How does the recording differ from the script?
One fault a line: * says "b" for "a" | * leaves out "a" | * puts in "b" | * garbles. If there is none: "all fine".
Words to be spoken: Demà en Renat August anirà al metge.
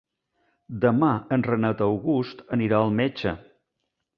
all fine